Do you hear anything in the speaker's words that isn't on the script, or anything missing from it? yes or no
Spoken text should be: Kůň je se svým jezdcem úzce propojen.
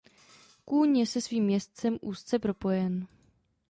no